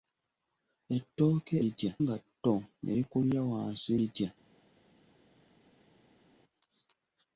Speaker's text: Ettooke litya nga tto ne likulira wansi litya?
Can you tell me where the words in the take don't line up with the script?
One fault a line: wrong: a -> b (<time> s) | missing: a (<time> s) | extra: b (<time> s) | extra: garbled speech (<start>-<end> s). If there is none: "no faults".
no faults